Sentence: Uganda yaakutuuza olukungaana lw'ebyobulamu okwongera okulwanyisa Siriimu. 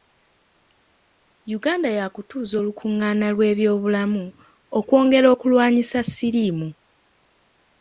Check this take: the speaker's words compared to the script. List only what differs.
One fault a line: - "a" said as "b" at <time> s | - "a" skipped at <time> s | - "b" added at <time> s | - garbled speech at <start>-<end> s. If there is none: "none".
none